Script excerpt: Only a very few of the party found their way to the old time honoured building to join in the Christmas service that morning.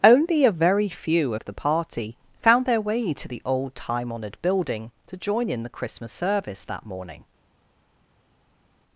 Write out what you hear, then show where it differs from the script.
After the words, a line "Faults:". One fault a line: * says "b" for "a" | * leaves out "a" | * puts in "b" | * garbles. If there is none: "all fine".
Only a very few of the party found their way to the old time honoured building to join in the Christmas service that morning.
Faults:
all fine